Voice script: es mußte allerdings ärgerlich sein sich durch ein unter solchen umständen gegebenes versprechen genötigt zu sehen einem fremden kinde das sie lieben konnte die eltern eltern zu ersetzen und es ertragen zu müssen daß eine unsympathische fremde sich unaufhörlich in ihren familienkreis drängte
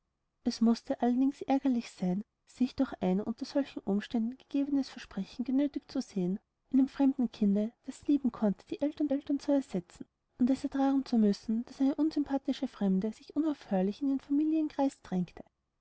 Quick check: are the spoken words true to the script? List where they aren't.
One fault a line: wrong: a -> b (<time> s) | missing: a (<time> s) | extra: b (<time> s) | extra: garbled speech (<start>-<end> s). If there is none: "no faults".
no faults